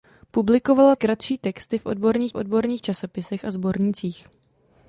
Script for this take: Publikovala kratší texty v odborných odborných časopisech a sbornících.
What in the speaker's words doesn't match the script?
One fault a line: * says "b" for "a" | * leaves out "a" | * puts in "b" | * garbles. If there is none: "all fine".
all fine